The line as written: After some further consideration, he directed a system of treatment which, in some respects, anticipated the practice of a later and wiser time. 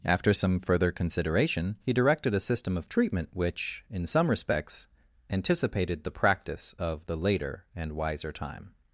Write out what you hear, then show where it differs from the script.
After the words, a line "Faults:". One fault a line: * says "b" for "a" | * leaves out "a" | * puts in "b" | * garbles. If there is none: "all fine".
After some further consideration, he directed a system of treatment which, in some respects, anticipated the practice of the later and wiser time.
Faults:
* says "the" for "a"